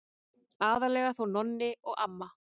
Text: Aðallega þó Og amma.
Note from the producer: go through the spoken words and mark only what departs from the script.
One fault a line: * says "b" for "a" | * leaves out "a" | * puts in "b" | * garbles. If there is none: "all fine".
* puts in "Nonni"